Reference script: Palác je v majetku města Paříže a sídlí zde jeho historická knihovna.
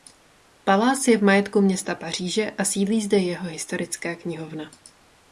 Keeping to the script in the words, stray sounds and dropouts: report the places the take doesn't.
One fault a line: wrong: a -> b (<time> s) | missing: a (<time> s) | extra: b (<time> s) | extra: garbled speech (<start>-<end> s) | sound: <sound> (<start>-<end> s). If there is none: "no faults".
no faults